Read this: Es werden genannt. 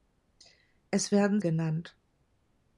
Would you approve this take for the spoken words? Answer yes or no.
yes